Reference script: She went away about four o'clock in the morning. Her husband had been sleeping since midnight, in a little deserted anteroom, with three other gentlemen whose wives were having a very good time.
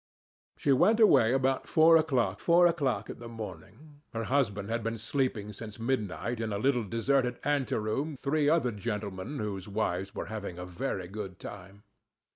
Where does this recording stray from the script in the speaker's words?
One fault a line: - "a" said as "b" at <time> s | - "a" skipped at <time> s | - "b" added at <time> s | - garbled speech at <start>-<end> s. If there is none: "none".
- "four o'clock" added at 2.4 s
- "with" skipped at 8.2 s